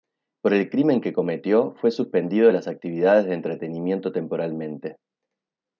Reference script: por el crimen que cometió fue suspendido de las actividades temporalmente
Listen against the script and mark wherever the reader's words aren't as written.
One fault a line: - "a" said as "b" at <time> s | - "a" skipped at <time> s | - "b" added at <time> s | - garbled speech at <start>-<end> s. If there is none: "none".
- "de entretenimiento" added at 3.2 s